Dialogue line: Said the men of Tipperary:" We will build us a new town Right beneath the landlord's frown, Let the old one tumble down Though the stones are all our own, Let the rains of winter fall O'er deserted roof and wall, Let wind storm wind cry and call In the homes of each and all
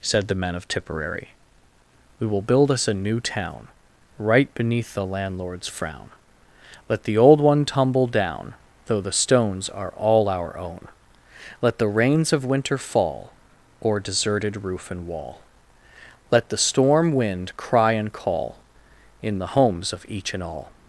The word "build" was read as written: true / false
true